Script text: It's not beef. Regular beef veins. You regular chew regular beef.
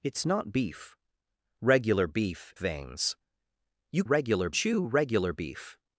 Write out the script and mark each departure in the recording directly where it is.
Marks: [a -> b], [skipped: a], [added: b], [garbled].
It's not beef. Regular beef veins. You regular chew regular beef.